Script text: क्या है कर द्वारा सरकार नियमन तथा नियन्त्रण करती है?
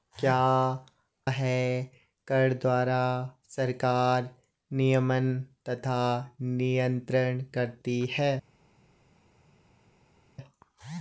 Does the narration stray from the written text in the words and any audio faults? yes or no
no